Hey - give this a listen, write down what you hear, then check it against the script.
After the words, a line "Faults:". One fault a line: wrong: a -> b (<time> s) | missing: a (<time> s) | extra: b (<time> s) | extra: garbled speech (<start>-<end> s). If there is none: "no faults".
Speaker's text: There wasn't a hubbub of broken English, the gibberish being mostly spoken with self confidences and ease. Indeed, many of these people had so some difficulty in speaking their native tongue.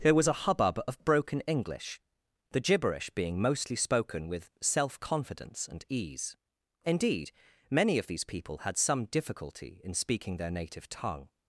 There was a hubbub of broken English, the gibberish being mostly spoken with self confidence and ease. Indeed, many of these people had some difficulty in speaking their native tongue.
Faults:
wrong: wasn't -> was (0.1 s)
wrong: confidences -> confidence (5.0 s)
missing: so (8.8 s)